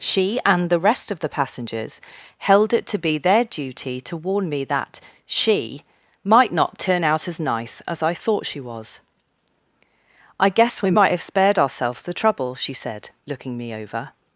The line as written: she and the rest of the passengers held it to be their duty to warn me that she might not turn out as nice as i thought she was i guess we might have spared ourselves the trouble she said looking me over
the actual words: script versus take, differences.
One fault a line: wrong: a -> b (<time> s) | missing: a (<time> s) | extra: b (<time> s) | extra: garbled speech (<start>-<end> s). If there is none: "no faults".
no faults